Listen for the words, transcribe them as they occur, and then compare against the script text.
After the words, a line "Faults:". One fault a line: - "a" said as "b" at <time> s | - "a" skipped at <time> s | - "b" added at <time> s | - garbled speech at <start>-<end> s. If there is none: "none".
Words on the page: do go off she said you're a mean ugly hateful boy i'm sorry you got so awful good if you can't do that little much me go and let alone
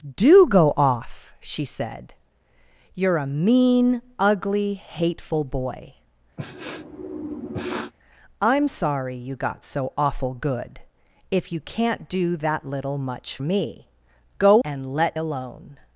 do go off she said you're a mean ugly hateful boy i'm sorry you got so awful good if you can't do that little much me go and let alone
Faults:
none